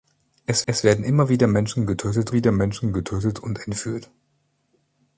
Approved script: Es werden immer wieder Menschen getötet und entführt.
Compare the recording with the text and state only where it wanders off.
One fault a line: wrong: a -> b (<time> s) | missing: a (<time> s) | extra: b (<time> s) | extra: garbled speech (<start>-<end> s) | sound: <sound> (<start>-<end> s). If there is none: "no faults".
extra: es (0.7 s)
extra: wieder Menschen getötet (2.3 s)